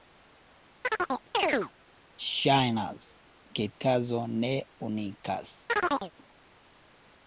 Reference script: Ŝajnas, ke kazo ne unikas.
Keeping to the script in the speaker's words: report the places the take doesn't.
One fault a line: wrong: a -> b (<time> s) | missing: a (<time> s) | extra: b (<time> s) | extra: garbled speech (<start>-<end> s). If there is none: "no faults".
no faults